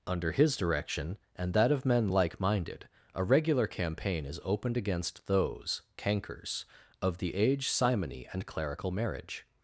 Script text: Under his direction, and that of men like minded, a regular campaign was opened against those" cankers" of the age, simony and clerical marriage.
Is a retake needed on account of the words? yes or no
yes